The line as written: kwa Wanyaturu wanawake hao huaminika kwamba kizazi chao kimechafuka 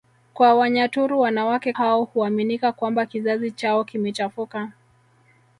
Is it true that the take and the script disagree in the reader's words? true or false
false